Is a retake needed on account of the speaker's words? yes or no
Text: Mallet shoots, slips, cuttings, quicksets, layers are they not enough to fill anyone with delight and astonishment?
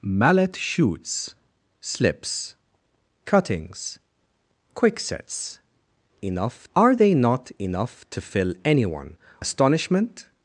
yes